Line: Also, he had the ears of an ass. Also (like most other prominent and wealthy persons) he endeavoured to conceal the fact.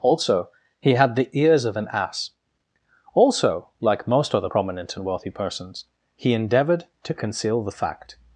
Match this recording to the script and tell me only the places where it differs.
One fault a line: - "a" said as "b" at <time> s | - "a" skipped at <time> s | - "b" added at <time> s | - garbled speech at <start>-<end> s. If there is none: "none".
none